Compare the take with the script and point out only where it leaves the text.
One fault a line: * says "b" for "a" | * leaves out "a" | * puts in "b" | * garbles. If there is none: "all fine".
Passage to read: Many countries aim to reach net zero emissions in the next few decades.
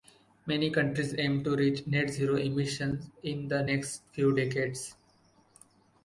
all fine